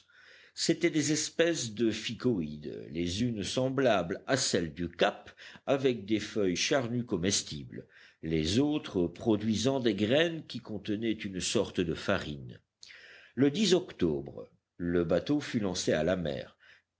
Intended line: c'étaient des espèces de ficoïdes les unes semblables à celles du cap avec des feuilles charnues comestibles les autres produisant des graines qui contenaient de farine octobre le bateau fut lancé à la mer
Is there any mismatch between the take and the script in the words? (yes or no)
yes